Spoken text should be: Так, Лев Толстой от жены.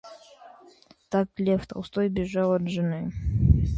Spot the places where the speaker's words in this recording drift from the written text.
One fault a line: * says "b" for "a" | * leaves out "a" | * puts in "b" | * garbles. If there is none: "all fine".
* puts in "бежал"